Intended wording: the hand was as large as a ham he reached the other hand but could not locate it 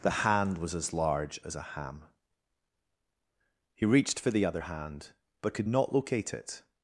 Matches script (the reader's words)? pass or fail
fail